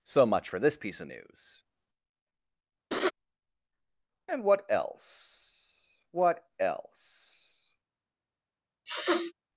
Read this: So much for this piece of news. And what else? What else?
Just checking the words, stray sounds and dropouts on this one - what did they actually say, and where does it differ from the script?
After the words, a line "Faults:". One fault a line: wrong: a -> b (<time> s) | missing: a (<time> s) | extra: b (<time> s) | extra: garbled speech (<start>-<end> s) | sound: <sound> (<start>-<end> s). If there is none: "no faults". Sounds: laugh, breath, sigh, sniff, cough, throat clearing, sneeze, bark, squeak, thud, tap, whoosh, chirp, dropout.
So much for this piece of news. And what else? What else?
Faults:
sound: laugh (2.9-3.1 s)
sound: sneeze (8.9-9.3 s)